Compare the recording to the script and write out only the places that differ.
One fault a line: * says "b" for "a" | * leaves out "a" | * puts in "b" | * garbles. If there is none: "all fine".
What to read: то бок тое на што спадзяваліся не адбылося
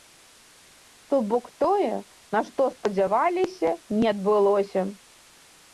all fine